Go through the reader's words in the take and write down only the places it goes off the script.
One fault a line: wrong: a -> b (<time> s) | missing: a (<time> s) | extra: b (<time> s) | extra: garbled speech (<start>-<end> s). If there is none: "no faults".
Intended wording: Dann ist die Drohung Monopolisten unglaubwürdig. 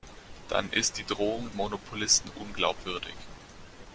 no faults